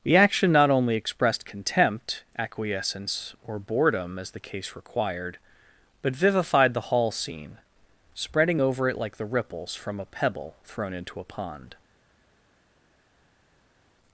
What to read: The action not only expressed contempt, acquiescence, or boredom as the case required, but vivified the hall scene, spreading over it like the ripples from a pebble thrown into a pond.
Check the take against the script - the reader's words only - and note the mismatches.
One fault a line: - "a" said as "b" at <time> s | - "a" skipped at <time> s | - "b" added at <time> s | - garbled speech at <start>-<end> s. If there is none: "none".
none